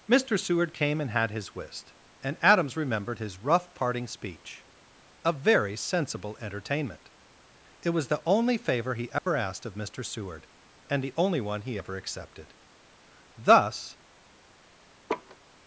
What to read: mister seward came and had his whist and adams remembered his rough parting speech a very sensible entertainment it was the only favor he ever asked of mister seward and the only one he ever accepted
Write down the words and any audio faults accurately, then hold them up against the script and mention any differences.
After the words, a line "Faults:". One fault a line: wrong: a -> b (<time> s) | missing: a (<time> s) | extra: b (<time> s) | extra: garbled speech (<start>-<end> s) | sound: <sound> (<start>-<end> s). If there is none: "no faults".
mister seward came and had his whist and adams remembered his rough parting speech a very sensible entertainment it was the only favor he ever asked of mister seward and the only one he ever accepted thus
Faults:
sound: dropout (9.2-9.3 s)
extra: thus (13.4 s)
sound: laugh (15.1-15.4 s)